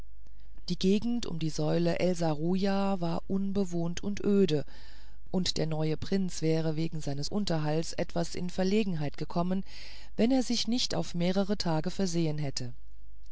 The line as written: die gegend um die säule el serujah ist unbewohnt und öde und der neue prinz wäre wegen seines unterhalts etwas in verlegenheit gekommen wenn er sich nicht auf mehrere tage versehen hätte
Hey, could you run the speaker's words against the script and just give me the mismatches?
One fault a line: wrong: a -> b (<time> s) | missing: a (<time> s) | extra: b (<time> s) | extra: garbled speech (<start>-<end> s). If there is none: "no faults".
wrong: ist -> war (3.0 s)